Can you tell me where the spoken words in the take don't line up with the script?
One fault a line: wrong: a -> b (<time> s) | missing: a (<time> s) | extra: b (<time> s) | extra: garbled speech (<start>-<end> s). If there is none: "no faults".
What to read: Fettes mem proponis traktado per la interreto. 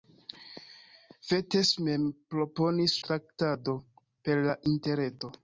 no faults